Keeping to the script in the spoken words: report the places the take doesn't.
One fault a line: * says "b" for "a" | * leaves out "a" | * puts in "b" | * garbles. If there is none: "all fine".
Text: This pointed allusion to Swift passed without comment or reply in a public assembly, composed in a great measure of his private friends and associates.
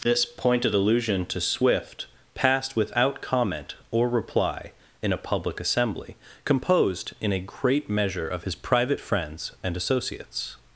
all fine